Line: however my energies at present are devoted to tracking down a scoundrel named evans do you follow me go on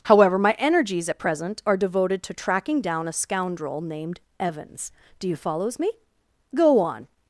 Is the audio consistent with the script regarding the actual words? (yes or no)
no